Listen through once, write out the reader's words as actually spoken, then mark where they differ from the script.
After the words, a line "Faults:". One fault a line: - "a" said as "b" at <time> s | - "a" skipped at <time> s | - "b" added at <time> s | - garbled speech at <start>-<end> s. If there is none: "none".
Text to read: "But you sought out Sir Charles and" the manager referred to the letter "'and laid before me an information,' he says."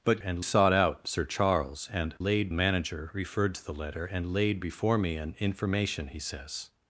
"But and sought out Sir Charles and" laid manager referred to the letter "'and laid before me an information,' he says."
Faults:
- "you" said as "and" at 0.2 s
- "the" said as "laid" at 2.2 s